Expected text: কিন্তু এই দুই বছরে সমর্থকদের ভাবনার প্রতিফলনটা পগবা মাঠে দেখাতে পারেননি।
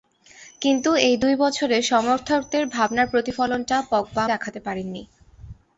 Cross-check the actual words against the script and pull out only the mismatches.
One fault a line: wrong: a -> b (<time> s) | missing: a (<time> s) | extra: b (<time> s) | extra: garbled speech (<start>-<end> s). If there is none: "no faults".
missing: মাঠে (4.2 s)